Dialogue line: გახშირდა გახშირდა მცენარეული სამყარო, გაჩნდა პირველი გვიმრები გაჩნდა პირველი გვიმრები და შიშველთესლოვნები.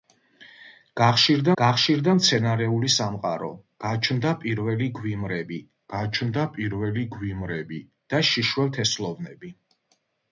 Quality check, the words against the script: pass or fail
pass